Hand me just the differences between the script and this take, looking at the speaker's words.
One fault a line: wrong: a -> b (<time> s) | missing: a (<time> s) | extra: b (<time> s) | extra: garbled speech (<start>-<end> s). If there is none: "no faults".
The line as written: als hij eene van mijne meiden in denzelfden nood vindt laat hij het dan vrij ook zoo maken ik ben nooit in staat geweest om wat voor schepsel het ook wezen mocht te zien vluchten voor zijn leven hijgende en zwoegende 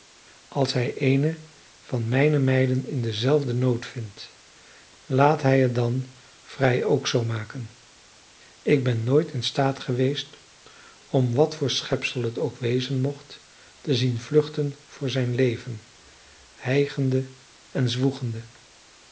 no faults